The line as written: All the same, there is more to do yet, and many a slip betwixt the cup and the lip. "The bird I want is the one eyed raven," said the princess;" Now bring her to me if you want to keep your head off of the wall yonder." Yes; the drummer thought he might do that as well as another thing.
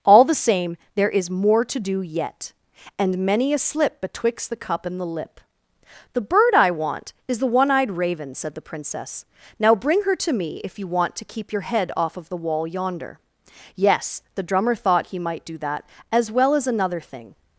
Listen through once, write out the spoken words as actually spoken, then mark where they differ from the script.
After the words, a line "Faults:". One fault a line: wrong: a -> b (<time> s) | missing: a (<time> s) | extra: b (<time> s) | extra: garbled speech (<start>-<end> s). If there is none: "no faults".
All the same, there is more to do yet, and many a slip betwixt the cup and the lip. "The bird I want is the one eyed raven," said the princess;" Now bring her to me if you want to keep your head off of the wall yonder." Yes; the drummer thought he might do that as well as another thing.
Faults:
no faults